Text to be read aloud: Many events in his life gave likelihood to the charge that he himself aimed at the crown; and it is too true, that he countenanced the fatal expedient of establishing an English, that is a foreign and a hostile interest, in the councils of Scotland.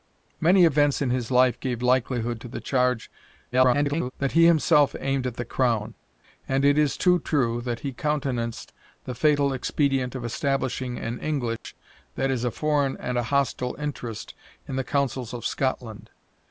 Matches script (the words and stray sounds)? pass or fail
fail